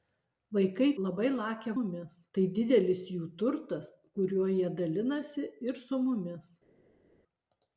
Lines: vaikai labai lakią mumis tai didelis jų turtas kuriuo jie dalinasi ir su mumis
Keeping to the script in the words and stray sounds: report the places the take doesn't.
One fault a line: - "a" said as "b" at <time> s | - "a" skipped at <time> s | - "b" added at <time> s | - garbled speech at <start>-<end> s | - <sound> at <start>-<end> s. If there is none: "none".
none